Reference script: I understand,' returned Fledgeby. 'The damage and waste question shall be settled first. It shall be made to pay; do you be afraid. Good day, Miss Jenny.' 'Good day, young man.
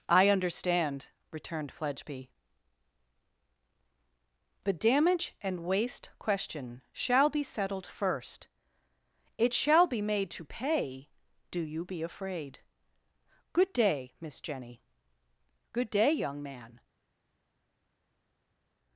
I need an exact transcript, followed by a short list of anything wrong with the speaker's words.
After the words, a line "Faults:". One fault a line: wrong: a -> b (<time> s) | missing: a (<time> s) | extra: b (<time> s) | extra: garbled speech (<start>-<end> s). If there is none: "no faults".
I understand,' returned Fledgeby. 'The damage and waste question shall be settled first. It shall be made to pay; do you be afraid. Good day, Miss Jenny.' 'Good day, young man.
Faults:
no faults